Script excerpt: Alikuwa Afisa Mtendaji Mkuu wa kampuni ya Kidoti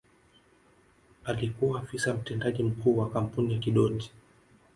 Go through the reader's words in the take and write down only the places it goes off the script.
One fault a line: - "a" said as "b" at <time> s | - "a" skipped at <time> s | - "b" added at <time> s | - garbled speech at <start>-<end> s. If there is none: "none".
none